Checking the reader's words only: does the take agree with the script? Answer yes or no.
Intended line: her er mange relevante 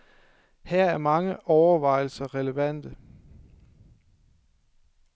no